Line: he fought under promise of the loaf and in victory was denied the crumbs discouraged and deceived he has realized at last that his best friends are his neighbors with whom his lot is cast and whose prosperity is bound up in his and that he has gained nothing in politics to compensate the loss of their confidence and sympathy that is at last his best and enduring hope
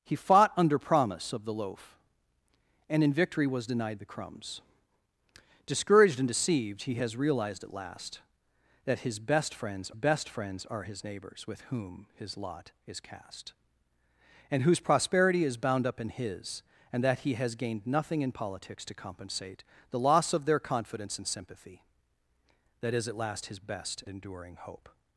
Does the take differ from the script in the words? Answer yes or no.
yes